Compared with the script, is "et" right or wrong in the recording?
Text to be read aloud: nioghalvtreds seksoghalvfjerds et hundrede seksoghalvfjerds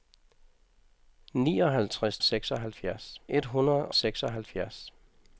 right